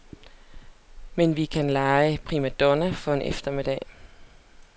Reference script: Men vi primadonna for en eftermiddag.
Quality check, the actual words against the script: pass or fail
fail